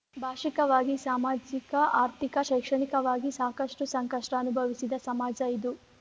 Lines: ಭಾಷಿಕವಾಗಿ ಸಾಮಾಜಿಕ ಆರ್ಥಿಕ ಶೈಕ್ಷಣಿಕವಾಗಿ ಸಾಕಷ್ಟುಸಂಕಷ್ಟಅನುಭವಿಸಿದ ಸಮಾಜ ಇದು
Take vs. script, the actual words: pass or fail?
pass